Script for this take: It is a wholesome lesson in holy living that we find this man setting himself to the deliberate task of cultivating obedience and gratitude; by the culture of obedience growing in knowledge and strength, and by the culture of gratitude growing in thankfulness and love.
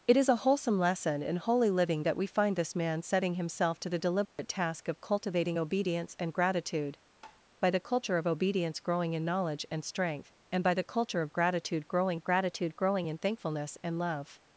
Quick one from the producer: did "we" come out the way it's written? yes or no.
yes